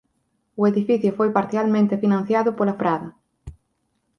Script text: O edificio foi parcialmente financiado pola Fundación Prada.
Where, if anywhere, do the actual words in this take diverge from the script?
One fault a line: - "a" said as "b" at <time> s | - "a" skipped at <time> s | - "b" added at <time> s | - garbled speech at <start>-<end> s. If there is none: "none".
- "Fundación" skipped at 2.8 s